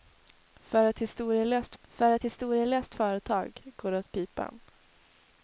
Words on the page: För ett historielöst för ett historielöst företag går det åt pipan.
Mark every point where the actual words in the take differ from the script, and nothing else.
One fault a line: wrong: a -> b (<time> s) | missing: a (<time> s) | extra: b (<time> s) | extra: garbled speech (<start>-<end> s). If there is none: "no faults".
no faults